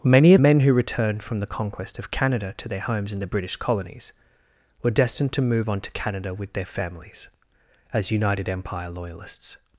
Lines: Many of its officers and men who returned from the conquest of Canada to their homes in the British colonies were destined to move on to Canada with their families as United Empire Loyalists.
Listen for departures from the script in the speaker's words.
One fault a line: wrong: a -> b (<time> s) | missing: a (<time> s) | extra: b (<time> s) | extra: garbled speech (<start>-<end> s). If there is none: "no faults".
missing: its officers and (0.4 s)